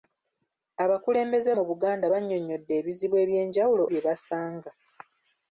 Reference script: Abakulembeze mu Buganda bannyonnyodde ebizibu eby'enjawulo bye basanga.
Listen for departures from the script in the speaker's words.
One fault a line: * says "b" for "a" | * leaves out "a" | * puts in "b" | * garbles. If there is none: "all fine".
all fine